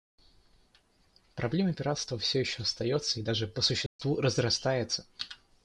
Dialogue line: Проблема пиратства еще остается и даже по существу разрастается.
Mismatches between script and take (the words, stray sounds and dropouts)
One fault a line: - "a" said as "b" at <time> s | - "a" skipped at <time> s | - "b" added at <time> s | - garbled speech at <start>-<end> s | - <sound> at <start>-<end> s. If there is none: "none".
- "все" added at 2.2 s
- dropout at 3.9-4.0 s